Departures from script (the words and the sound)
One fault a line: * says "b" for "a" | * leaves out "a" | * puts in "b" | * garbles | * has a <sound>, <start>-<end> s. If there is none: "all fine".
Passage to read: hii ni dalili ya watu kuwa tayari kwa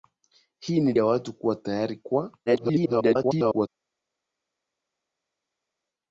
* leaves out "dalili"
* garbles